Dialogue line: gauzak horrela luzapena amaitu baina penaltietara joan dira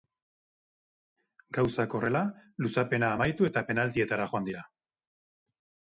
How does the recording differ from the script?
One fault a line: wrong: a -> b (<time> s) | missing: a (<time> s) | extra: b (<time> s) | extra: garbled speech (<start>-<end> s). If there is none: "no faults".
wrong: baina -> eta (3.5 s)